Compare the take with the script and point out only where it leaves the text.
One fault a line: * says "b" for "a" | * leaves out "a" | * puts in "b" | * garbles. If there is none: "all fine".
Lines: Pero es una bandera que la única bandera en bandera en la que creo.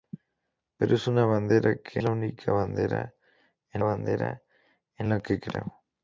all fine